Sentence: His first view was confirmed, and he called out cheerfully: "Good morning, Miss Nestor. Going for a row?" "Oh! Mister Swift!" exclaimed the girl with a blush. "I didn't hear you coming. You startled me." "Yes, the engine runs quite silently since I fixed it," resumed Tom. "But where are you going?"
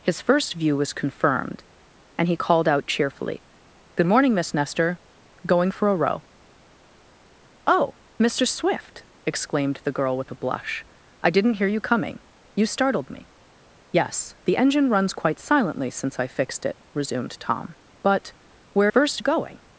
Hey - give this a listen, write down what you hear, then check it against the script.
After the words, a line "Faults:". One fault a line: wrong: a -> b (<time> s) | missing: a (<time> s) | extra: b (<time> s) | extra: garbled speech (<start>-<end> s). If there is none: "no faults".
His first view was confirmed, and he called out cheerfully: "Good morning, Miss Nestor. Going for a row?" "Oh! Mister Swift!" exclaimed the girl with a blush. "I didn't hear you coming. You startled me." "Yes, the engine runs quite silently since I fixed it," resumed Tom. "But where first you going?"
Faults:
wrong: are -> first (18.9 s)